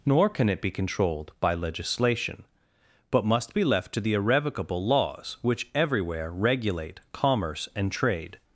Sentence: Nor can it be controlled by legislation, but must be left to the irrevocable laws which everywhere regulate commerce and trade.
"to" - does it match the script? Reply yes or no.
yes